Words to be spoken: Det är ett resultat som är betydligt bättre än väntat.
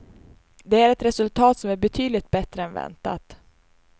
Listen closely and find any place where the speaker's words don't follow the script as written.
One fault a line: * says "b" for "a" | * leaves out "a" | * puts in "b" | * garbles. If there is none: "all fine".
all fine